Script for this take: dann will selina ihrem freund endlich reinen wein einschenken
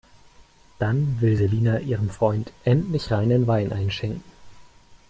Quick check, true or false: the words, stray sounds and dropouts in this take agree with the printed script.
true